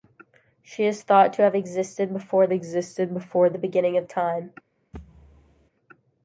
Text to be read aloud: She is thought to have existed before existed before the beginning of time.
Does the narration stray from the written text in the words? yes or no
no